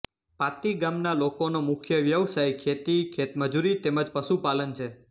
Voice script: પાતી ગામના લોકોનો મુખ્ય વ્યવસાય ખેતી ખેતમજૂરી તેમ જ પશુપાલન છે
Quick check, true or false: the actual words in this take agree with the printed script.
true